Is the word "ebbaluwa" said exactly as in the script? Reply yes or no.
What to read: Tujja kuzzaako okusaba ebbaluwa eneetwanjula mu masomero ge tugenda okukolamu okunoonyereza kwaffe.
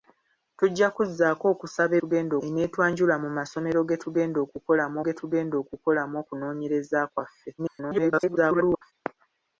no